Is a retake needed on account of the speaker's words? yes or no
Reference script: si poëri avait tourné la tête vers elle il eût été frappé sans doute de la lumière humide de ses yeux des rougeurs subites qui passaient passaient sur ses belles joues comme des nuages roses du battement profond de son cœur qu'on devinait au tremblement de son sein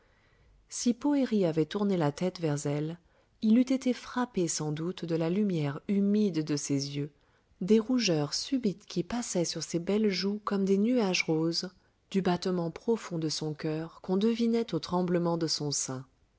yes